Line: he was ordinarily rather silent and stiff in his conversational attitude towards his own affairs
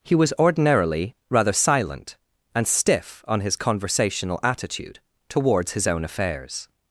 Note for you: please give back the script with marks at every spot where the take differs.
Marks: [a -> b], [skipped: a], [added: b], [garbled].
he was ordinarily rather silent and stiff [in -> on] his conversational attitude towards his own affairs